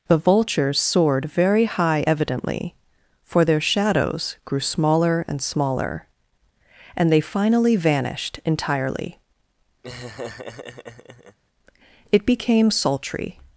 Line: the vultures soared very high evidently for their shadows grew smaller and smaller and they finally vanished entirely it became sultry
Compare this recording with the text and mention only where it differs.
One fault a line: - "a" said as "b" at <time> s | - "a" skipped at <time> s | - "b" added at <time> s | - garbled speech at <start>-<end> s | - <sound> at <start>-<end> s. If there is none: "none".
- laugh at 9.8-11.4 s